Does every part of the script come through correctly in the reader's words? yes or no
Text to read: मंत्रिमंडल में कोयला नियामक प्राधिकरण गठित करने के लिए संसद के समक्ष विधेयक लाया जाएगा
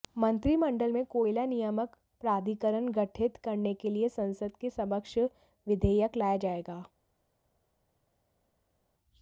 yes